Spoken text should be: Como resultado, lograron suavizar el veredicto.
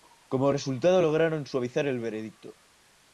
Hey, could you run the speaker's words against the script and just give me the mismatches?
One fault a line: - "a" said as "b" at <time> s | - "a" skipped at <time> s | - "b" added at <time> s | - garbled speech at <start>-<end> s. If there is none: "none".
none